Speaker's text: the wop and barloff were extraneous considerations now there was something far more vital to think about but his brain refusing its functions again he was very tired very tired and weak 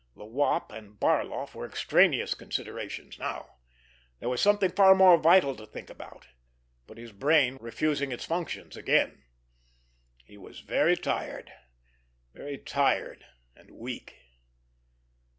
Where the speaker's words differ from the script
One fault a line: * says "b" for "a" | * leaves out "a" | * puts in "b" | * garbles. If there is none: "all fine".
all fine